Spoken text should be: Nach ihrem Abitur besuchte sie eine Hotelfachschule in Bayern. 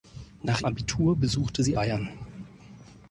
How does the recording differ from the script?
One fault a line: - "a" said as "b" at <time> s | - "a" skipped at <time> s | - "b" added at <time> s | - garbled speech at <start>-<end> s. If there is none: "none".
- "ihrem" skipped at 0.6 s
- "eine Hotelfachschule in" skipped at 1.8 s